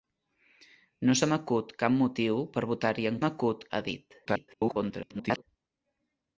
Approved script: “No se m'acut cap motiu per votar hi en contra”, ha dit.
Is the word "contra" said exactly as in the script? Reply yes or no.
no